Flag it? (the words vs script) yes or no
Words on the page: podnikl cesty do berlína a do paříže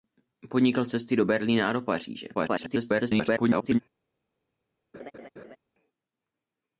yes